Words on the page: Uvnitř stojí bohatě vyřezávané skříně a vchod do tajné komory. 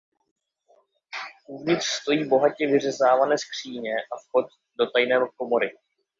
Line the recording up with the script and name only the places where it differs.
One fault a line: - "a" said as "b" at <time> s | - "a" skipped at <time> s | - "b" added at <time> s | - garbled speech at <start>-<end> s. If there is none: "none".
none